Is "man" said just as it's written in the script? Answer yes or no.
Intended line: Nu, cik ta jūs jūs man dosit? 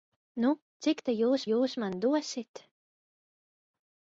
yes